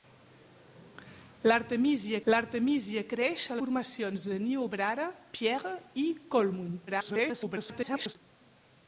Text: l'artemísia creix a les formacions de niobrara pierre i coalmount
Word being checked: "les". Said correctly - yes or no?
no